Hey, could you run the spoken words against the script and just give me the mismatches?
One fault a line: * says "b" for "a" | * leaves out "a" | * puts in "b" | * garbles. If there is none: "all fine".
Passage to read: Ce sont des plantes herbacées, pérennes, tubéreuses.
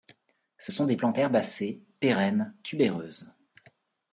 all fine